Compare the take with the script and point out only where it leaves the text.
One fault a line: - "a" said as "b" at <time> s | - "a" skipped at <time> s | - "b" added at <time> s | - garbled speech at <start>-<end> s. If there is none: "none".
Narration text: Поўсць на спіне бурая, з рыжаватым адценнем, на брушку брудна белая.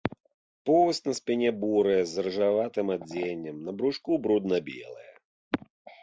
none